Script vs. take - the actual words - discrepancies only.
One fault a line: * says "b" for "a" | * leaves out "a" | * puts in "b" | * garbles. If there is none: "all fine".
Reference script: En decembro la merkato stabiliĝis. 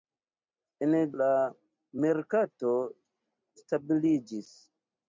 * leaves out "decembro"